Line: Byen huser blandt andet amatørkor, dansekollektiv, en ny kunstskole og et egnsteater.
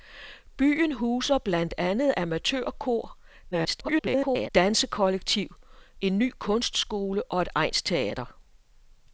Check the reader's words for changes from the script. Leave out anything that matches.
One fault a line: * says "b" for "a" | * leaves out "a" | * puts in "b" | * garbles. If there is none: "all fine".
* garbles